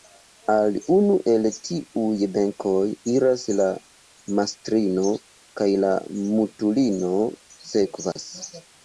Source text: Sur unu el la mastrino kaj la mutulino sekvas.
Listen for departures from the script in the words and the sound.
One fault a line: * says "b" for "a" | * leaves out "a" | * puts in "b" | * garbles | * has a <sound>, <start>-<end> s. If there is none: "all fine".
* says "Al" for "Sur"
* puts in "tiuj benkoj iras"
* has a dropout, 8.1-8.2 s